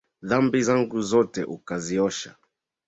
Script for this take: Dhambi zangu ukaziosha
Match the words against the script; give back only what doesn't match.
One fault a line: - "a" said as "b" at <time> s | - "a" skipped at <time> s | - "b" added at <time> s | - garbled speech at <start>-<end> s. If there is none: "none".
- "zote" added at 1.0 s